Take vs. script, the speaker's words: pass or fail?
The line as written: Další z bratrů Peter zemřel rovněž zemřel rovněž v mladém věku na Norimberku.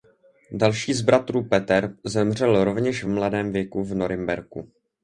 fail